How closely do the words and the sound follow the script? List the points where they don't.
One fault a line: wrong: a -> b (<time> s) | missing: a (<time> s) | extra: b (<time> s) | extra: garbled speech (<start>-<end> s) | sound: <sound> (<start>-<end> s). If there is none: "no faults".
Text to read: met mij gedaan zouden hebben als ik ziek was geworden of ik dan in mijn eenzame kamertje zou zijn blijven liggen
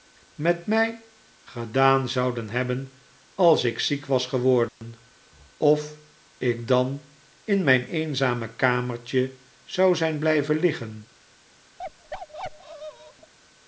sound: dropout (4.7-4.8 s)
sound: bark (11.8-13.3 s)